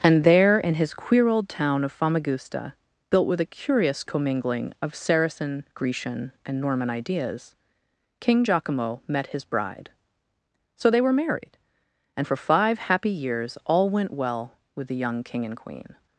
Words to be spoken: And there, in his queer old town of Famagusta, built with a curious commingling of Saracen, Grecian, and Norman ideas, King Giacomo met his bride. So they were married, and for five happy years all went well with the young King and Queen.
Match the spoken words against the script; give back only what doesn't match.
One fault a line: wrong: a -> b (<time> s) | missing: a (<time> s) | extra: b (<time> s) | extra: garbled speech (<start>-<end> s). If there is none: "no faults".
no faults